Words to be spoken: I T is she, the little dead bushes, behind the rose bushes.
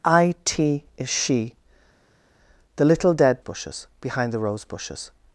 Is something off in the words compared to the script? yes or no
no